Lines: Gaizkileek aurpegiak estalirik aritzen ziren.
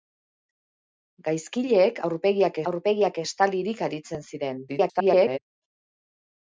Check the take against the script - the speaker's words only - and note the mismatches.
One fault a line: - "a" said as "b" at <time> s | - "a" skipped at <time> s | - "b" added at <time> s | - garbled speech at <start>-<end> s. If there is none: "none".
- "aurpegiak" added at 2.7 s
- garbled speech at 4.7-5.4 s